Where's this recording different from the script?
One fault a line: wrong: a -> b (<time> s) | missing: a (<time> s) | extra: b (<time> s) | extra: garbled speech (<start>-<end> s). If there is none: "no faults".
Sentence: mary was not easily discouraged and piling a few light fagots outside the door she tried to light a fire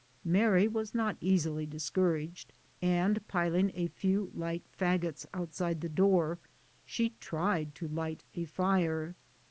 no faults